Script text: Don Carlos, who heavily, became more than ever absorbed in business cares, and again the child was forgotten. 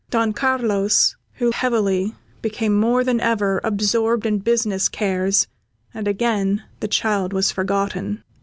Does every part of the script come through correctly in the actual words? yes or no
yes